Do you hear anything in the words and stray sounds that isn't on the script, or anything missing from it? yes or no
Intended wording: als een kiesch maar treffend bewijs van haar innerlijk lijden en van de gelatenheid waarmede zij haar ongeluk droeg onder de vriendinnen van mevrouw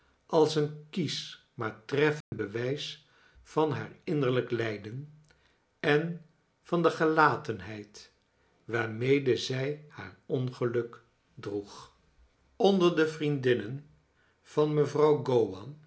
yes